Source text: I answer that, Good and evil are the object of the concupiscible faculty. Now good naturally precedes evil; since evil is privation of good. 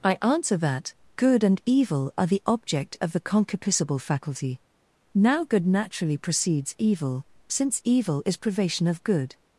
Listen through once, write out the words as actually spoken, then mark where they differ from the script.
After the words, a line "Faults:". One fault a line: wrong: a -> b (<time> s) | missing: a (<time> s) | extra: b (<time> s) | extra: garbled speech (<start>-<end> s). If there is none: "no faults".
I answer that, Good and evil are the object of the concupiscible faculty. Now good naturally precedes evil; since evil is privation of good.
Faults:
no faults